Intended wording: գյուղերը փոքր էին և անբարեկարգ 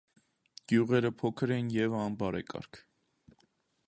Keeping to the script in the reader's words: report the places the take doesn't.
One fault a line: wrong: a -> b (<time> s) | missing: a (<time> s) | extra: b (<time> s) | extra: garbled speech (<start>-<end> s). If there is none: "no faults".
no faults